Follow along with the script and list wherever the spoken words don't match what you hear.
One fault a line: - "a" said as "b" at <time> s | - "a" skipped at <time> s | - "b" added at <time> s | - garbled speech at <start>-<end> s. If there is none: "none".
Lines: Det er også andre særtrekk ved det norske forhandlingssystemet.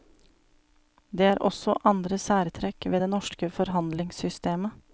none